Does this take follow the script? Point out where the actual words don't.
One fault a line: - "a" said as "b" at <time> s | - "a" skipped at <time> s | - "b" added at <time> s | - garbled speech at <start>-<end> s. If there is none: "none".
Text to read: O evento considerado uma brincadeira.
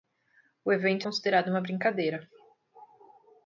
none